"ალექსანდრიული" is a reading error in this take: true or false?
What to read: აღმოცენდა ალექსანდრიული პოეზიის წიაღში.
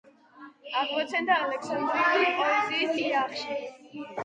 false